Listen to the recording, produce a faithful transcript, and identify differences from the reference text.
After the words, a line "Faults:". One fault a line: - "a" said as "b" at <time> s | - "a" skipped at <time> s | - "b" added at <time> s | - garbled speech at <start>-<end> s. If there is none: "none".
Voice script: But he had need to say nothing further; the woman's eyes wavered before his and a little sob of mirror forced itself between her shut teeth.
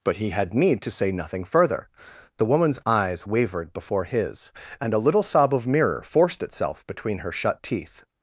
But he had need to say nothing further; the woman's eyes wavered before his and a little sob of mirror forced itself between her shut teeth.
Faults:
none